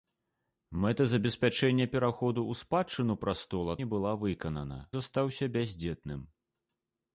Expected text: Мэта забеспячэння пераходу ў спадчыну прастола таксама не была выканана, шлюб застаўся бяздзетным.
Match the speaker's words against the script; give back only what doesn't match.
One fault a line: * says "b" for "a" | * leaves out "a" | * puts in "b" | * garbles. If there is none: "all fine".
* leaves out "таксама"
* leaves out "шлюб"